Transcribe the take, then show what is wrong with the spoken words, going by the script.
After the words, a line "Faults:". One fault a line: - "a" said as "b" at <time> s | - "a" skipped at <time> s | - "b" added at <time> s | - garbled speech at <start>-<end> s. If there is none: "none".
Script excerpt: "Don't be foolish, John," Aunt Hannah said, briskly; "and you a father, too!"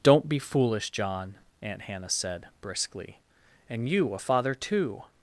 "Don't be foolish, John," Aunt Hannah said, briskly; "and you a father, too!"
Faults:
none